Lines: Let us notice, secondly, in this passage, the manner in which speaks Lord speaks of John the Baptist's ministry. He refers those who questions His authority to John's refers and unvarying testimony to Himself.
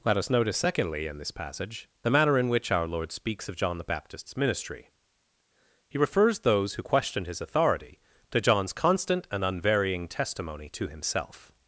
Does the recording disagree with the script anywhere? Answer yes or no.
yes